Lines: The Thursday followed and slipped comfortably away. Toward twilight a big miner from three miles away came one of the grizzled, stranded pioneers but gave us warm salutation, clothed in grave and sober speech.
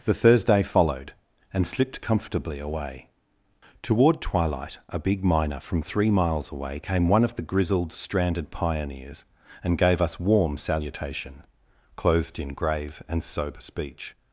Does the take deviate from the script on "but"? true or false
true